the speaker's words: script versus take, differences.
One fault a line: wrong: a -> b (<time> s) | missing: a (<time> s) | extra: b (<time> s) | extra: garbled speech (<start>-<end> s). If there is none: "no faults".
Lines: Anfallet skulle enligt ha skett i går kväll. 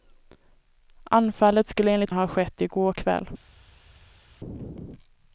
no faults